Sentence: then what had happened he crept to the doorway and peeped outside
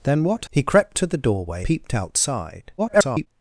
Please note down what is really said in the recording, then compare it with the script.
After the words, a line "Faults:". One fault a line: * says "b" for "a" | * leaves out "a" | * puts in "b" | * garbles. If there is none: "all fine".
then what he crept to the doorway peeped outside [garbled]
Faults:
* leaves out "had happened"
* leaves out "and"
* garbles